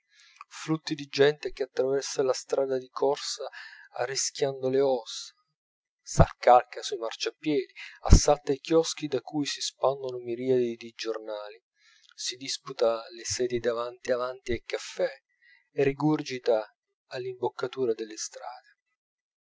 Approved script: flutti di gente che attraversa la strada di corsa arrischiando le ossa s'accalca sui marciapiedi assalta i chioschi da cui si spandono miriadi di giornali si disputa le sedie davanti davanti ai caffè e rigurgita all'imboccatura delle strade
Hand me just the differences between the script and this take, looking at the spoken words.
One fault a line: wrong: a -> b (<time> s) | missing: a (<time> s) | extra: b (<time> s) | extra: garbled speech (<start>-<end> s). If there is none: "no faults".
no faults